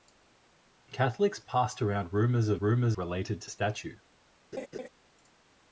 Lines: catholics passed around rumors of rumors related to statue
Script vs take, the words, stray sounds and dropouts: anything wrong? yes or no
yes